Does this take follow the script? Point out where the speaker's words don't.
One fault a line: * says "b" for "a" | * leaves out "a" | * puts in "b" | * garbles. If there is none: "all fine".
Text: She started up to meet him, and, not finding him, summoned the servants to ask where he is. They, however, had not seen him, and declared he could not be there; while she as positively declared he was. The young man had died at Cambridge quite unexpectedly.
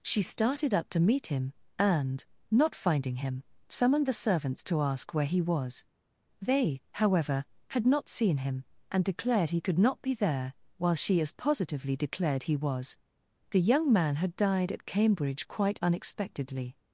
* says "was" for "is"